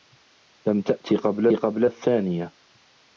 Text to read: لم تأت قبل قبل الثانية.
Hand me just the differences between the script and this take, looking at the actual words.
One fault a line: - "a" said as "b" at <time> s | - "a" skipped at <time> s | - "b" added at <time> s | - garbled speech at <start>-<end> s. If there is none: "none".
none